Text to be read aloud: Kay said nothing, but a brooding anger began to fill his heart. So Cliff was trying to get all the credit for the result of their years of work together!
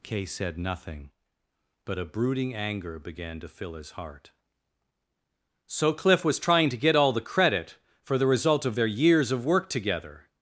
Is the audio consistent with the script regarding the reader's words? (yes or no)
yes